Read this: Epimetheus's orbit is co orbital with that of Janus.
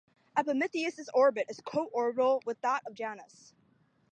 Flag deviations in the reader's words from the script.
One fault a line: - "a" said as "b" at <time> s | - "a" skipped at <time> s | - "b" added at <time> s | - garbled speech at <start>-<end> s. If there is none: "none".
none